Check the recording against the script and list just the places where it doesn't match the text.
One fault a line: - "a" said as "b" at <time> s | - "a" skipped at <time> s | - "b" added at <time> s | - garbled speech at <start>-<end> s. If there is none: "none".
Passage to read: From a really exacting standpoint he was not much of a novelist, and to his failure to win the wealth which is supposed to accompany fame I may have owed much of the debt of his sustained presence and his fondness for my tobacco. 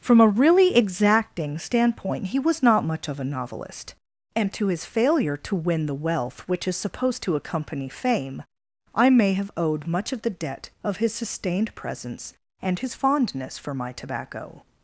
none